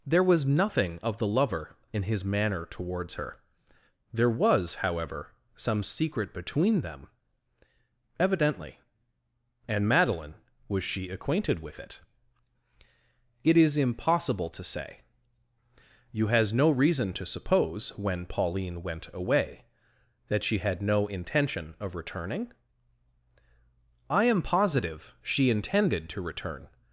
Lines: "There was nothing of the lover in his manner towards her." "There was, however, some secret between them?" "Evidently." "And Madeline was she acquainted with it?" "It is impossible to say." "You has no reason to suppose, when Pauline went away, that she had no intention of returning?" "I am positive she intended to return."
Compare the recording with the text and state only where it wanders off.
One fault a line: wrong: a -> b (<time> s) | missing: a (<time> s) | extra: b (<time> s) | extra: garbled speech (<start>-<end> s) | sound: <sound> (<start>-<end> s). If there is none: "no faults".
no faults